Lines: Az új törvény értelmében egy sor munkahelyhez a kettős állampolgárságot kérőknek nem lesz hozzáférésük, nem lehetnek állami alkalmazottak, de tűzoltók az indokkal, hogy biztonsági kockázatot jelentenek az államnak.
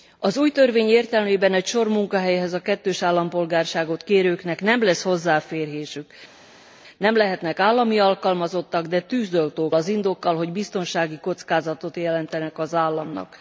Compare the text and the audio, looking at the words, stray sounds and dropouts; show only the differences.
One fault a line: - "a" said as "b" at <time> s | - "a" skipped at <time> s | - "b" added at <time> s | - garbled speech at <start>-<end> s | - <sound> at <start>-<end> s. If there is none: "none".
none